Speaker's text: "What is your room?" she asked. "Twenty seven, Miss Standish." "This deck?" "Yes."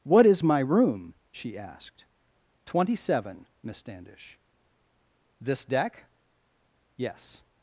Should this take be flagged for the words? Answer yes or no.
yes